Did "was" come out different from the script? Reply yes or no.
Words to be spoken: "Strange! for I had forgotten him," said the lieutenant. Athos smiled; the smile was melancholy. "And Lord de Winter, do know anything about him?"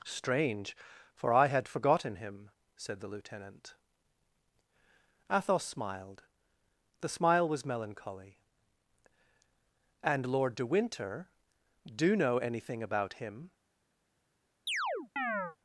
no